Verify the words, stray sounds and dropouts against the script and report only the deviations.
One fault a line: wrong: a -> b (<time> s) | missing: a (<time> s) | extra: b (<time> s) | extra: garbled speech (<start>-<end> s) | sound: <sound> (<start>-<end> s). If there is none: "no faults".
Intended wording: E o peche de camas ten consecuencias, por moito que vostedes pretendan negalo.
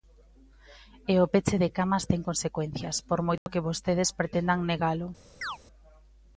sound: dropout (3.4-3.5 s)
sound: chirp (5.4-5.6 s)